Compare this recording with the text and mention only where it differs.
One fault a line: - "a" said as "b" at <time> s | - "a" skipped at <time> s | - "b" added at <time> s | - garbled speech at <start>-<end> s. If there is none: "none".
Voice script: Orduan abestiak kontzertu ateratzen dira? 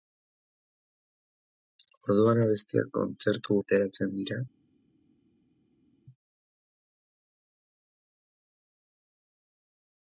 none